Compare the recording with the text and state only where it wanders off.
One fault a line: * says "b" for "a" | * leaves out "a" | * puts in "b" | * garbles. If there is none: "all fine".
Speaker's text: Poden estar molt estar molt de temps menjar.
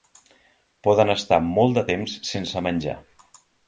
* leaves out "estar molt"
* puts in "sense"